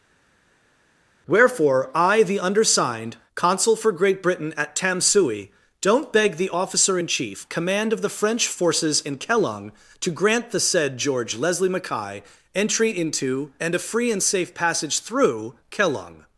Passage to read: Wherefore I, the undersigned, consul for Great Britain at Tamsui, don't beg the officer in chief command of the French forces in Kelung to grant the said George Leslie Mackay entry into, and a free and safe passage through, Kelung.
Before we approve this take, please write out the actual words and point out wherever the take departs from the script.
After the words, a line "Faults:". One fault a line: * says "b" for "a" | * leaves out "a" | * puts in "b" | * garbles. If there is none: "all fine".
Wherefore I, the undersigned, consul for Great Britain at Tamsui, don't beg the officer in chief command of the French forces in Kelung to grant the said George Leslie Mackay entry into, and a free and safe passage through, Kelung.
Faults:
all fine